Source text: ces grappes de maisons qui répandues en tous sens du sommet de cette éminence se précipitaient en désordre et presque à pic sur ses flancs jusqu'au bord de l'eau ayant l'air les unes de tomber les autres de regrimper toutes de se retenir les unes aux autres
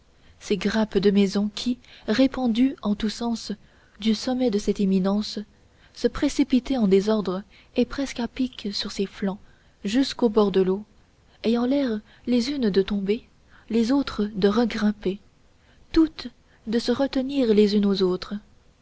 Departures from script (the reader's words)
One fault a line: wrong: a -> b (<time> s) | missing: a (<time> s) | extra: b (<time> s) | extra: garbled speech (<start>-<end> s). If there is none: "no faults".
no faults